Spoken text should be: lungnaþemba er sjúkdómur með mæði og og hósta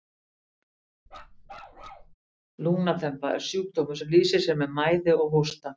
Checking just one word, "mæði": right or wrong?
right